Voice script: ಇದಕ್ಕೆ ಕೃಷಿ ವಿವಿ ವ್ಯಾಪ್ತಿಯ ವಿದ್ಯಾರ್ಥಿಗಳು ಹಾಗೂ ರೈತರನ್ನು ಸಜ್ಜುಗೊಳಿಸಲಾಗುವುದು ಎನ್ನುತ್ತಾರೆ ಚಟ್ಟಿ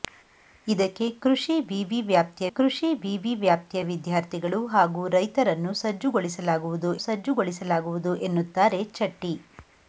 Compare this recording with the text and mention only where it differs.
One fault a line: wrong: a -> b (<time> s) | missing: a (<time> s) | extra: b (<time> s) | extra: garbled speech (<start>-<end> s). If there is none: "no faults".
extra: ಕೃಷಿ ವಿವಿ ವ್ಯಾಪ್ತಿಯ (2.5 s)
extra: ಸಜ್ಜುಗೊಳಿಸಲಾಗುವುದು (7.0 s)